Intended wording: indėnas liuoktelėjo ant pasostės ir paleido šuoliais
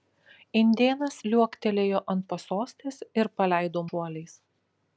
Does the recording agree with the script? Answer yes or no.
yes